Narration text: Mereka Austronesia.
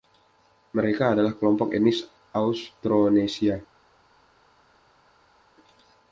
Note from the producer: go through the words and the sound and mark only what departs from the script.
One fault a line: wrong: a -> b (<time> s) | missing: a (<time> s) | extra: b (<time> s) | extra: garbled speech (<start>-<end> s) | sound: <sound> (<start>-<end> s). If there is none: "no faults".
extra: adalah kelompok etnis (1.1 s)